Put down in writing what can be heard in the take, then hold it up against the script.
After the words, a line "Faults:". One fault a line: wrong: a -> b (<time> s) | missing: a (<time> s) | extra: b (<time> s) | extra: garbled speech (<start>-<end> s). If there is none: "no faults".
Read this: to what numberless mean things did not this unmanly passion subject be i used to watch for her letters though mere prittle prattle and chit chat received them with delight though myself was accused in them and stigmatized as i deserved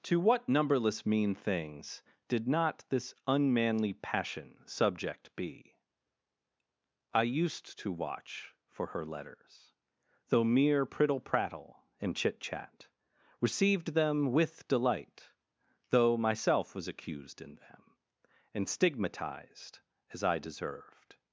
to what numberless mean things did not this unmanly passion subject be i used to watch for her letters though mere prittle prattle and chit chat received them with delight though myself was accused in them and stigmatized as i deserved
Faults:
no faults